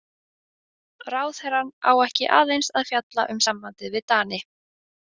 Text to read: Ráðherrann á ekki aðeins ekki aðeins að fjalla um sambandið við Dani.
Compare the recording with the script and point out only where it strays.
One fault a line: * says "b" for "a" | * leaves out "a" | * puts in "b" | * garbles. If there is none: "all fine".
* leaves out "ekki aðeins"